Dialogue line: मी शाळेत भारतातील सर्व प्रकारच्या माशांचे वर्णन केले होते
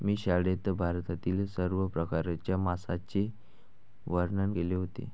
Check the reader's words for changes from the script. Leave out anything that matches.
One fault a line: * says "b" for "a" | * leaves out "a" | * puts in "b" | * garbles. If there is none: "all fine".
all fine